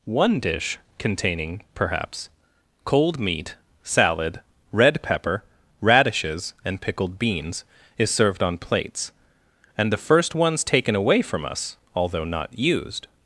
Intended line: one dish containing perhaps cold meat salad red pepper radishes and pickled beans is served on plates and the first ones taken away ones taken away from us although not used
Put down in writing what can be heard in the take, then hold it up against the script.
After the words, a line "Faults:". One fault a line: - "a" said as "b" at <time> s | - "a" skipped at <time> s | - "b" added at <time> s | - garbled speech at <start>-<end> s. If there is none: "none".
one dish containing perhaps cold meat salad red pepper radishes and pickled beans is served on plates and the first ones taken away from us although not used
Faults:
- "ones taken away" skipped at 11.2 s